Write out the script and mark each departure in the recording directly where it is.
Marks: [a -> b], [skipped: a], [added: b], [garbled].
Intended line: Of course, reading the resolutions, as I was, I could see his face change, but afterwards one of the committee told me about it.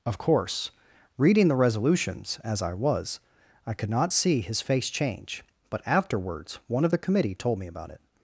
Of course, reading the resolutions, as I was, I could [added: not] see his face change, but afterwards one of the committee told me about it.